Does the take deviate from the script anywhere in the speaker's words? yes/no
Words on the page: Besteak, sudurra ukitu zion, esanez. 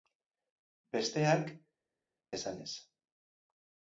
yes